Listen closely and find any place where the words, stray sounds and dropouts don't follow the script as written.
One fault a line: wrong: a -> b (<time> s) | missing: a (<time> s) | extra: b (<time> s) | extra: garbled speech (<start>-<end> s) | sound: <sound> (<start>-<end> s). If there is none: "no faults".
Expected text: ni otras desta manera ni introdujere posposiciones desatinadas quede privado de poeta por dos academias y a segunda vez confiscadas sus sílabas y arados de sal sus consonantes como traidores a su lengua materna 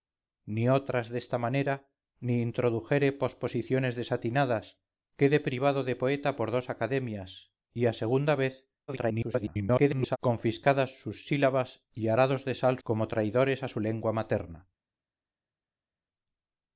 extra: garbled speech (8.9-10.2 s)
missing: sus consonantes (12.8 s)